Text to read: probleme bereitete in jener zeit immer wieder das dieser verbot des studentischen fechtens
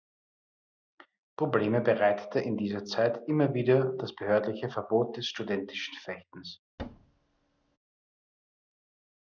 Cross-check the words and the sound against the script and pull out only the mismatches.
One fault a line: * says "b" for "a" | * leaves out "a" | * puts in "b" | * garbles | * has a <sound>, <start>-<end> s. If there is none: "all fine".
* says "dieser" for "jener"
* says "behördliche" for "dieser"
* has a thud, 6.8-7.8 s